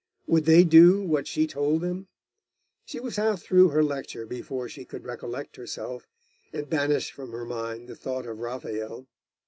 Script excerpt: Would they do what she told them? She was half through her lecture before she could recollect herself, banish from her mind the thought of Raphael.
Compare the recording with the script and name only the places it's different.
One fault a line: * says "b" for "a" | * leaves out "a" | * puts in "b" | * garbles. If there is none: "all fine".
* puts in "and"